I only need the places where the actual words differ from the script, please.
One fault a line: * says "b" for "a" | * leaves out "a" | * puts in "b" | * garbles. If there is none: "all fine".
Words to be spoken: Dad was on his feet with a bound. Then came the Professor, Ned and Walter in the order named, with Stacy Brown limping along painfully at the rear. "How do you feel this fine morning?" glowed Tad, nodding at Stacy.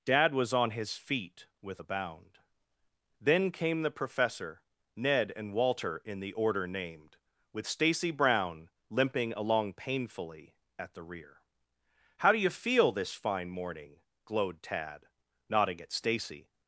all fine